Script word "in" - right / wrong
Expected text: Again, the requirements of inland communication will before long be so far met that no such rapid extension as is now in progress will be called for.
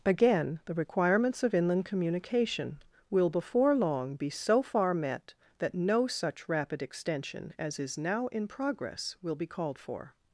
right